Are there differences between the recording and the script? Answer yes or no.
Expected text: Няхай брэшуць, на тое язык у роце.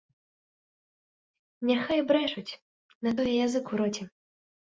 no